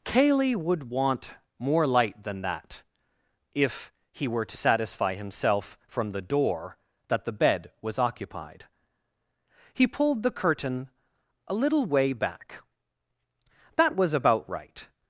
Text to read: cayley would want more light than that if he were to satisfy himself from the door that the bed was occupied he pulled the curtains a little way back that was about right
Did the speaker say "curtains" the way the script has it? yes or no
no